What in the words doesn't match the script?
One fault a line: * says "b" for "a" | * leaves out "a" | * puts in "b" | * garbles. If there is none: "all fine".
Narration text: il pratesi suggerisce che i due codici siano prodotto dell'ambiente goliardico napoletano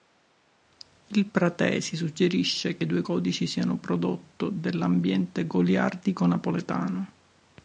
all fine